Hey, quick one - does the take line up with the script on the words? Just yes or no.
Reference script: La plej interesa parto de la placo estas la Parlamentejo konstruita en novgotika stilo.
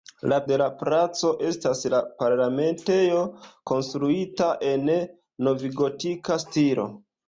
no